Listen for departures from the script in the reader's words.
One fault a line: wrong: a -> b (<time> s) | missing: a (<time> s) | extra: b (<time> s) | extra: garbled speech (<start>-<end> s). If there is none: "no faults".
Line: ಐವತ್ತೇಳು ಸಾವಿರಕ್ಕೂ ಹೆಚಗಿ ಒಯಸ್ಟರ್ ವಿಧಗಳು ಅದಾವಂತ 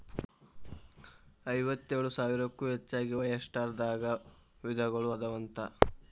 extra: ದಾಗ (3.8 s)